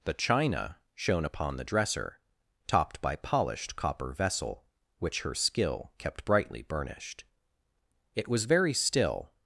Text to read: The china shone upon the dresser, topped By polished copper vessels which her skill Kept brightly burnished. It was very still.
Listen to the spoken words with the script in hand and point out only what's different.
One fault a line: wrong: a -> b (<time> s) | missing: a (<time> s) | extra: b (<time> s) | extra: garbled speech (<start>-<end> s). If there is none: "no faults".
wrong: vessels -> vessel (4.1 s)